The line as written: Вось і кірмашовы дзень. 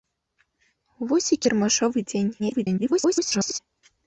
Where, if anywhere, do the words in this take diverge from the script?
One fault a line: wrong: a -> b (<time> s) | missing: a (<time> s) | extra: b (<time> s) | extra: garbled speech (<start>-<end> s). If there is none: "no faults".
extra: garbled speech (2.4-3.6 s)